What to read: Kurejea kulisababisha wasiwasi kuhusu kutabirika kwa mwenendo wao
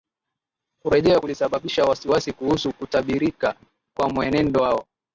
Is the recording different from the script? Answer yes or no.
no